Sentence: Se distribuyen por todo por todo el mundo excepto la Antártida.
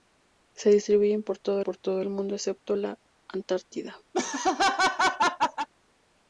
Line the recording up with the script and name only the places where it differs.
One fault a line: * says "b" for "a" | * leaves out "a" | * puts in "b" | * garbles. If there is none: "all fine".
all fine